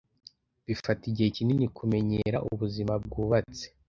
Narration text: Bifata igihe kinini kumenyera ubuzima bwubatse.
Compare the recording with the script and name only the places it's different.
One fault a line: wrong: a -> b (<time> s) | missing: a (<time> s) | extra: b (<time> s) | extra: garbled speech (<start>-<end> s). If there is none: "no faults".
no faults